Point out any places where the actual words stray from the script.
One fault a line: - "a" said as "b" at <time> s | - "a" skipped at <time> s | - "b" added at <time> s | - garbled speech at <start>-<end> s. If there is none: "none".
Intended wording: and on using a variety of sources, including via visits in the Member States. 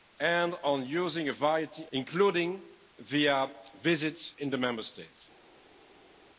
- "of sources" skipped at 1.9 s